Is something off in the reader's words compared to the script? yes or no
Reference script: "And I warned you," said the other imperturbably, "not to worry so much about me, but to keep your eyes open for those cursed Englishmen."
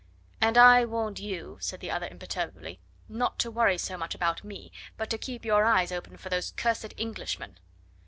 no